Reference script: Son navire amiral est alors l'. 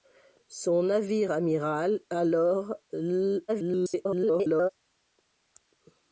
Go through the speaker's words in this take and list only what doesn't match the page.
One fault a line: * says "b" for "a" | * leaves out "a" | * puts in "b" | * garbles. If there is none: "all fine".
* leaves out "est"
* garbles